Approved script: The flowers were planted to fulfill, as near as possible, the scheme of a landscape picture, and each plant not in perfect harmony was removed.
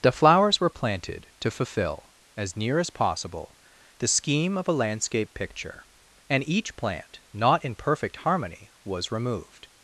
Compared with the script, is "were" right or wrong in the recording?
right